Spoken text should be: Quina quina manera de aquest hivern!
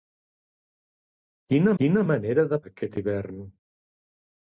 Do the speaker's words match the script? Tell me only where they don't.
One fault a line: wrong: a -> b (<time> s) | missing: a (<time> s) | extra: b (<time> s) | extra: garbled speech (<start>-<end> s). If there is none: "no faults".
no faults